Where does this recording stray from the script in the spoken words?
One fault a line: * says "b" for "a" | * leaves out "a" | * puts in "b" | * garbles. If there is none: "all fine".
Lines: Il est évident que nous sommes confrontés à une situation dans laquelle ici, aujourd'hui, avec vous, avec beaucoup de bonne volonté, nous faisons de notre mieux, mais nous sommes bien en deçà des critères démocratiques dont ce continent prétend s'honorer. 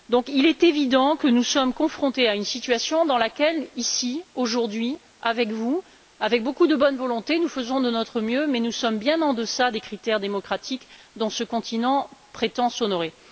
all fine